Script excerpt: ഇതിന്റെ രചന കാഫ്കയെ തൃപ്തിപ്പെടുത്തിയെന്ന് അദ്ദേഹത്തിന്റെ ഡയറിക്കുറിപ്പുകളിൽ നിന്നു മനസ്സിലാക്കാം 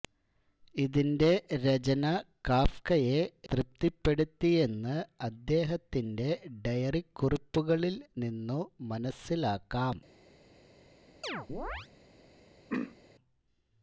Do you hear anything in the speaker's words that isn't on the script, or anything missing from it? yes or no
no